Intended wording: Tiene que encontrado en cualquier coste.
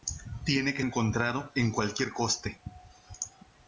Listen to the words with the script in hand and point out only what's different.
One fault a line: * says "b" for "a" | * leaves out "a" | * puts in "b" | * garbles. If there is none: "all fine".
all fine